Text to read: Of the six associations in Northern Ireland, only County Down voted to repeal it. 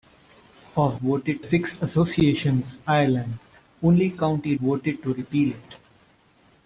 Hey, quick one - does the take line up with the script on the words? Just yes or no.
no